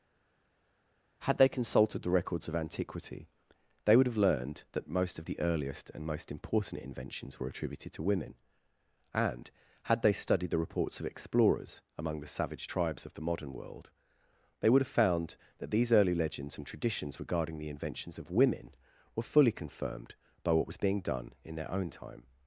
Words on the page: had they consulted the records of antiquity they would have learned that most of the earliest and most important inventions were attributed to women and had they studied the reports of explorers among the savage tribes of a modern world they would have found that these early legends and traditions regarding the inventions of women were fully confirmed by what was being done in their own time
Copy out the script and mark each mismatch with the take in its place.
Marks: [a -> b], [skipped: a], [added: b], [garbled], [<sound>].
had they consulted the records of antiquity they would have learned that most of the earliest and most important inventions were attributed to women and had they studied the reports of explorers among the savage tribes of [a -> the] modern world they would have found that these early legends and traditions regarding the inventions of women were fully confirmed by what was being done in their own time